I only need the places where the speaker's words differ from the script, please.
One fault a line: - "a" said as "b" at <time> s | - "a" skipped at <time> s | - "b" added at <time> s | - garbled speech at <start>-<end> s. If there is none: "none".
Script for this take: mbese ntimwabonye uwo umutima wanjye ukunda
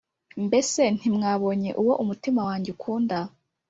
none